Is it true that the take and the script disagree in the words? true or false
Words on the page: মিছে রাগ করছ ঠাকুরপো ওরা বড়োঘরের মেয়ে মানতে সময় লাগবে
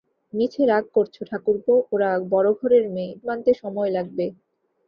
false